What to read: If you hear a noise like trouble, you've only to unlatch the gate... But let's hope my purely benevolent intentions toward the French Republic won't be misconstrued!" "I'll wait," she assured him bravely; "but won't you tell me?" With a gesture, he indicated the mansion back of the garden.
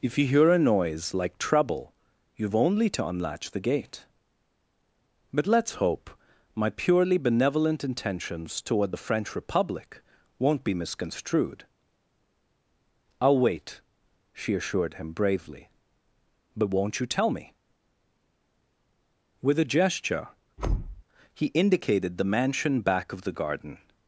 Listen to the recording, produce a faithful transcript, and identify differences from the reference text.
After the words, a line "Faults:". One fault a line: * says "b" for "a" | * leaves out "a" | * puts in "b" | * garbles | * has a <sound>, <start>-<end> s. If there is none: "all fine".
If you hear a noise like trouble, you've only to unlatch the gate... But let's hope my purely benevolent intentions toward the French Republic won't be misconstrued!" "I'll wait," she assured him bravely; "but won't you tell me?" With a gesture, he indicated the mansion back of the garden.
Faults:
* has a thud, 20.6-21.0 s